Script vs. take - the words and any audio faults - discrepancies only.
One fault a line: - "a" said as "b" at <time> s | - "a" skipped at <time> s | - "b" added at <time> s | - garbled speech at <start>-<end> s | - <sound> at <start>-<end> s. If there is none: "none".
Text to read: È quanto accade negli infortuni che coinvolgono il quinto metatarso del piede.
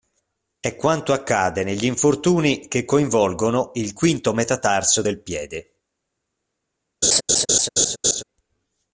- laugh at 7.0-8.2 s